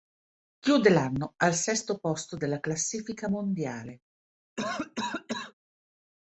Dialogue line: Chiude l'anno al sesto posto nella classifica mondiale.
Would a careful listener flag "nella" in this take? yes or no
yes